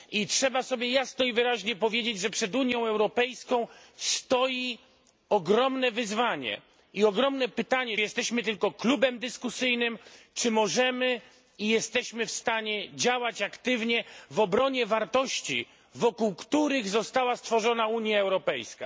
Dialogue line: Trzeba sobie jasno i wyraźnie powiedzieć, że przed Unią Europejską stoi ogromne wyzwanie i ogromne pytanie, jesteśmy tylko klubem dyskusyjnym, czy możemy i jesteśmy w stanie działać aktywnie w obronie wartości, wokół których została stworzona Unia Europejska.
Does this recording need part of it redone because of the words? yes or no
no